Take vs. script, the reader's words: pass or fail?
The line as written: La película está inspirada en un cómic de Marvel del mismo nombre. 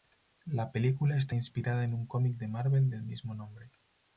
pass